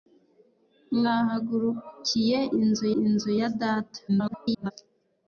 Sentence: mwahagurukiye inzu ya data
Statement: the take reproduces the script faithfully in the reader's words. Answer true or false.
false